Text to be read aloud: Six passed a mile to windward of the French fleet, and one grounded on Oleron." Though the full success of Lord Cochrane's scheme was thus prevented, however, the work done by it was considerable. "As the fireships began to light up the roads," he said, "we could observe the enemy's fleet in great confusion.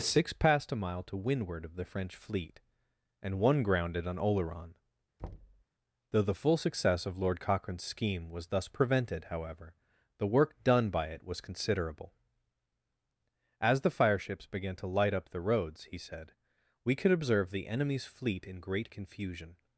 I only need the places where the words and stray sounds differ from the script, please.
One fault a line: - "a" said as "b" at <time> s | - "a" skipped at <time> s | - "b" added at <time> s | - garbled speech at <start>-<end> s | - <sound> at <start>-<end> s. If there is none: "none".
- thud at 5.2-5.6 s